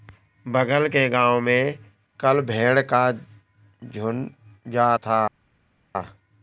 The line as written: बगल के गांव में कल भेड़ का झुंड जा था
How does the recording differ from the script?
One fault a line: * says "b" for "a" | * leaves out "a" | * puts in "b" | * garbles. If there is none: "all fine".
all fine